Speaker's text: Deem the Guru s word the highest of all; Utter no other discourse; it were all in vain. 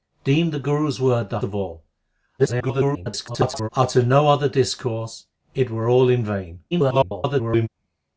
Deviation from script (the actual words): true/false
true